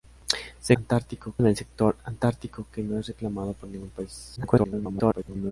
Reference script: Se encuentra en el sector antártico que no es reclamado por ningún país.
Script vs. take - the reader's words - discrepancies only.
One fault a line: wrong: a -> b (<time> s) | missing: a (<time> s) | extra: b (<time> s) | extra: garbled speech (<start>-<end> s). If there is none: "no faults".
wrong: encuentra -> antártico (0.7 s)
extra: garbled speech (4.4-5.5 s)